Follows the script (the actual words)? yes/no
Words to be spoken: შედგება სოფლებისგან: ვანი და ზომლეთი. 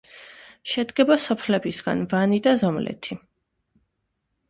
yes